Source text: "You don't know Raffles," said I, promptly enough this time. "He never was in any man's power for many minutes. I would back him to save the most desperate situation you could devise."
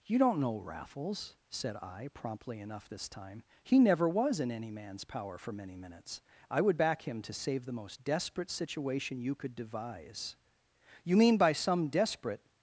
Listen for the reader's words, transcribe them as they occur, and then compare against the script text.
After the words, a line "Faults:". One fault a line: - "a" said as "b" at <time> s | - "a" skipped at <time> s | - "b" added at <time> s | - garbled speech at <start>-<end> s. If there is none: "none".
"You don't know Raffles," said I, promptly enough this time. "He never was in any man's power for many minutes. I would back him to save the most desperate situation you could devise." "You mean by some desperate
Faults:
- "You mean by some desperate" added at 11.0 s